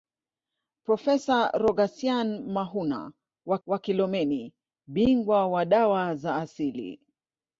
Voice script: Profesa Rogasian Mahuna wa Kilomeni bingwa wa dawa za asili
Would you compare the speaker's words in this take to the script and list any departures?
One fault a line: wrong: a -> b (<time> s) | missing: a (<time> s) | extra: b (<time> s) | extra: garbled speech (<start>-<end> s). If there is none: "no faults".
extra: wa (3.7 s)